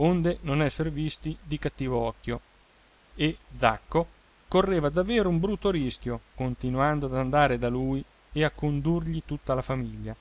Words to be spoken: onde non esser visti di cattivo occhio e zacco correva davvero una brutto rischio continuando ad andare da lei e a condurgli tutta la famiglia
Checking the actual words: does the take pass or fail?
fail